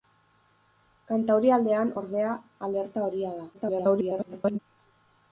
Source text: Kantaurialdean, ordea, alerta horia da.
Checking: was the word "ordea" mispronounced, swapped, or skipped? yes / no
no